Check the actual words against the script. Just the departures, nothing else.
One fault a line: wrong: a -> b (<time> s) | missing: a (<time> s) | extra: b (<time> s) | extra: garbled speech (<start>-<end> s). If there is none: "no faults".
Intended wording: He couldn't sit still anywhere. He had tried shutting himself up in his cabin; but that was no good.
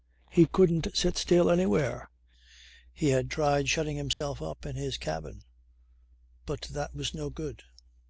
no faults